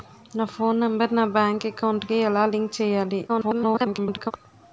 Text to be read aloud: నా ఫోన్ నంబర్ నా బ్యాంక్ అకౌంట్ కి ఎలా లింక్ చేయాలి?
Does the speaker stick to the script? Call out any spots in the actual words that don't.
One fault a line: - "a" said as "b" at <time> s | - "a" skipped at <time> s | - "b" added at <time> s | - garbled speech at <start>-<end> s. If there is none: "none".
- garbled speech at 3.3-4.3 s